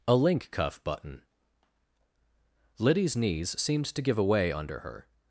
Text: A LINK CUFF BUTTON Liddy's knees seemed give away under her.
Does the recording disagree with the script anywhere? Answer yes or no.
yes